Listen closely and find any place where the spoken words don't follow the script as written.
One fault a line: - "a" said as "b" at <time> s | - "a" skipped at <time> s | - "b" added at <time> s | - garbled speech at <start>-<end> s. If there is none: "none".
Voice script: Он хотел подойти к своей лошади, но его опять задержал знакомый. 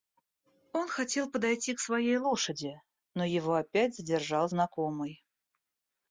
none